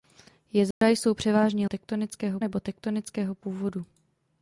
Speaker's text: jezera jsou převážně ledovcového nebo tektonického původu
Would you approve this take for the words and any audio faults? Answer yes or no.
no